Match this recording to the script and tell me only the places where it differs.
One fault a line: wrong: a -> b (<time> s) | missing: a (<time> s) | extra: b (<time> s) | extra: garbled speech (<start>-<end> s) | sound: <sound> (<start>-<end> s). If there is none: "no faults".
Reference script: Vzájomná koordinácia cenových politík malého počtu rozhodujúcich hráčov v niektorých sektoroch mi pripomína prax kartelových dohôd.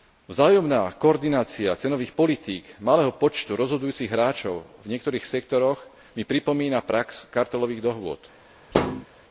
sound: thud (8.7-9.1 s)